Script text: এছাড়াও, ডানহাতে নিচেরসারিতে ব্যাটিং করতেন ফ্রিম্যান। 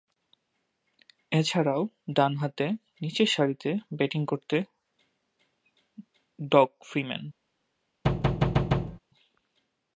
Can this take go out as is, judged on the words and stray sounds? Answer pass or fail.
fail